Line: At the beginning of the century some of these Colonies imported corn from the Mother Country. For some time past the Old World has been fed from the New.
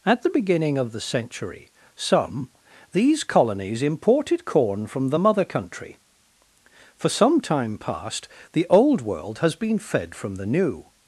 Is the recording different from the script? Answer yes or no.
yes